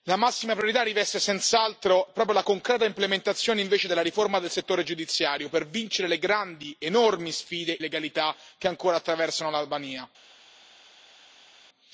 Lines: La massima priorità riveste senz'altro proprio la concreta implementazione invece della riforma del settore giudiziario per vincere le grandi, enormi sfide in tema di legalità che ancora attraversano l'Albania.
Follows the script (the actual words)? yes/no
no